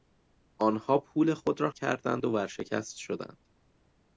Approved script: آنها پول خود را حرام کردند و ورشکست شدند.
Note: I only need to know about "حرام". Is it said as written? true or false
false